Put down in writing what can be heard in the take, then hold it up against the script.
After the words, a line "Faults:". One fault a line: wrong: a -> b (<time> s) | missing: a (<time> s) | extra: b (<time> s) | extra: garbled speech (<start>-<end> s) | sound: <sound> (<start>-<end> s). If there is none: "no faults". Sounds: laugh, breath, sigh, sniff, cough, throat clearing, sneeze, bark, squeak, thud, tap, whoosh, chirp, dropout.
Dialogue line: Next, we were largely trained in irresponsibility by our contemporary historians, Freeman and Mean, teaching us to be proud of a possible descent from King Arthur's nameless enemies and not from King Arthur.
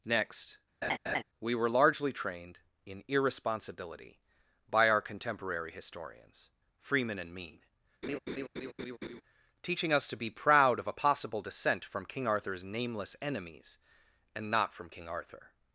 Next, we were largely trained in irresponsibility by our contemporary historians, Freeman and Mean, teaching us to be proud of a possible descent from King Arthur's nameless enemies and not from King Arthur.
Faults:
sound: laugh (0.8-1.2 s)
sound: laugh (8.0-9.2 s)